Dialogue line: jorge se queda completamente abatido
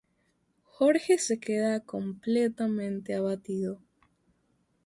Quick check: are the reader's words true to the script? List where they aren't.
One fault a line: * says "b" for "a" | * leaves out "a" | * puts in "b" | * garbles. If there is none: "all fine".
all fine